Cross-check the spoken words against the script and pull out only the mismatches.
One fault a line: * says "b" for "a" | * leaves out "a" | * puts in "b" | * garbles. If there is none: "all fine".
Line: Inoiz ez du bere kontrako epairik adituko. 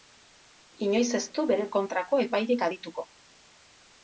all fine